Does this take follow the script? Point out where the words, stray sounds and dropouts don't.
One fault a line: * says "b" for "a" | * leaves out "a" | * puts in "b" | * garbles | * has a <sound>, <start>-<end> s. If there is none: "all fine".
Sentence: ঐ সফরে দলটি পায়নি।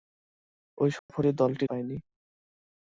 * has a dropout, 1.0-1.1 s